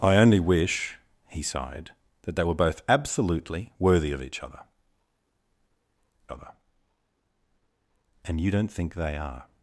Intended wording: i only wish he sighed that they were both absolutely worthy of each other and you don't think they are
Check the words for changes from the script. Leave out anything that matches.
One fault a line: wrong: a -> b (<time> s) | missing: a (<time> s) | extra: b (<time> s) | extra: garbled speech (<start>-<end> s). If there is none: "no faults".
extra: other (6.3 s)